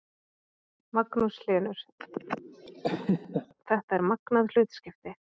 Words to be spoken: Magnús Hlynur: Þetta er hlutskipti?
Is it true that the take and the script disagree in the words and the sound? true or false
true